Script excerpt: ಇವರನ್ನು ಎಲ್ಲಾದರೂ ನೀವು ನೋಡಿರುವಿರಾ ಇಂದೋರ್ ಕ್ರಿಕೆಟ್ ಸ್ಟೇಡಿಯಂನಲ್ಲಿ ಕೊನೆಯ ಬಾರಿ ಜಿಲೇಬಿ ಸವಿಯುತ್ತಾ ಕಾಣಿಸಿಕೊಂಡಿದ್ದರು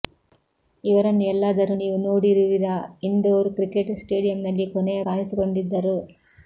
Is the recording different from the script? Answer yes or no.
yes